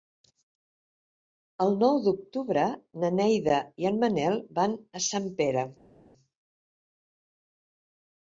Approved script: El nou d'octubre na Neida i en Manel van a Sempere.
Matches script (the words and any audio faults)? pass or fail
pass